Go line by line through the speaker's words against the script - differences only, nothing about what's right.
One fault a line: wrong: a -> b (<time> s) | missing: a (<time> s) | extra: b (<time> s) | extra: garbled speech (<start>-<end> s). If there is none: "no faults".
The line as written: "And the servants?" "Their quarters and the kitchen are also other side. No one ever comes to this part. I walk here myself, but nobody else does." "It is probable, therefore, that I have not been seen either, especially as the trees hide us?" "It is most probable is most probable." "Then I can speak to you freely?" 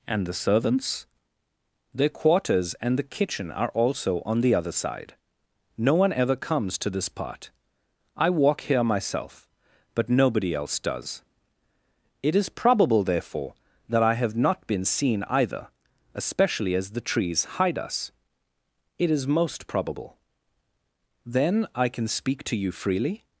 extra: on the (4.2 s)
missing: is most probable (20.2 s)